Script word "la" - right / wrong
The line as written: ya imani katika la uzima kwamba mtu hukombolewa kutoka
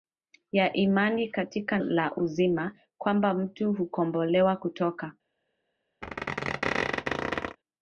right